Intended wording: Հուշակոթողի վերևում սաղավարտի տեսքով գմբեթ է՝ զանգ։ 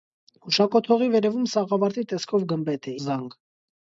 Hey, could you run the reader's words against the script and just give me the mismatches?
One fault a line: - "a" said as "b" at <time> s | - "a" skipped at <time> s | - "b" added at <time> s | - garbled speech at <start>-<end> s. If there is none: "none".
none